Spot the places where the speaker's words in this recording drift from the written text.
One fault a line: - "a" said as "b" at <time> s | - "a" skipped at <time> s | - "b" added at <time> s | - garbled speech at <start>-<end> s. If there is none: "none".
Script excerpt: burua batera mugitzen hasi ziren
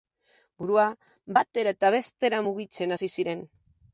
- "eta bestera" added at 1.7 s